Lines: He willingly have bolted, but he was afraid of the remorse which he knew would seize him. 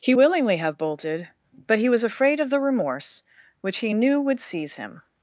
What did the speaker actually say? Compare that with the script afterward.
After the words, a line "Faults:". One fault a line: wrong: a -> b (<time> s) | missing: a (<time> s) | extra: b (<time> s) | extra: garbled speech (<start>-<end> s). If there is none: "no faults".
He willingly have bolted, but he was afraid of the remorse which he knew would seize him.
Faults:
no faults